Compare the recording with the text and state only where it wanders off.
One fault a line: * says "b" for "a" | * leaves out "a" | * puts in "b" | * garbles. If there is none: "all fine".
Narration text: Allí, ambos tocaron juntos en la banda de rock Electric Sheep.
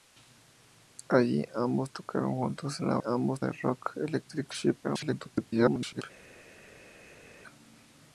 * says "ambos" for "banda"
* garbles